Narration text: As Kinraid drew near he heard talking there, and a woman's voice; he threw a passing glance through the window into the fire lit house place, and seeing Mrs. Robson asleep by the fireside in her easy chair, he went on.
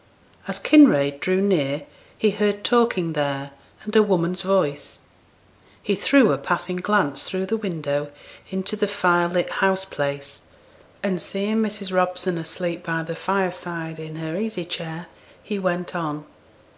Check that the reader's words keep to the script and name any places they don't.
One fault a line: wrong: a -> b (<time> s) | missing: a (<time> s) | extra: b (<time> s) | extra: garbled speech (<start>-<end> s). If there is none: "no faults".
no faults